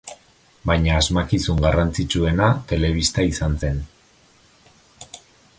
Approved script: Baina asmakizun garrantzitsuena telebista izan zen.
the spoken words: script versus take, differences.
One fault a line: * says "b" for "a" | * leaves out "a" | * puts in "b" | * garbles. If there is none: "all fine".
all fine